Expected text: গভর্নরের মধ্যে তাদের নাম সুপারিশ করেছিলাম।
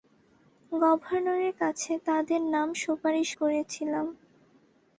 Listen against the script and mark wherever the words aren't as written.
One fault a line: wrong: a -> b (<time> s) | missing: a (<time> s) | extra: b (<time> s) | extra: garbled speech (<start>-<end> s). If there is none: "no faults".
wrong: মধ্যে -> কাছে (1.6 s)